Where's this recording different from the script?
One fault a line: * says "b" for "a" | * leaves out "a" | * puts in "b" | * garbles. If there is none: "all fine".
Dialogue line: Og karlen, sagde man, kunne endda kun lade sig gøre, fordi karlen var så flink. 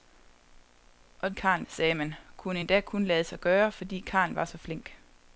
all fine